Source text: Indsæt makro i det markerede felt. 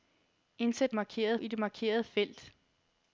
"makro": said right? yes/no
no